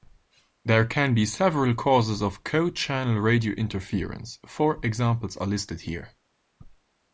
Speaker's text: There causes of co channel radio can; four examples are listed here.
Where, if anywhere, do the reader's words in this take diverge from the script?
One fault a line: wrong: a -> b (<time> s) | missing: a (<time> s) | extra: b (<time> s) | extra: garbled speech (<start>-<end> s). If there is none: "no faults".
extra: can be several (0.9 s)
wrong: can -> interference (3.5 s)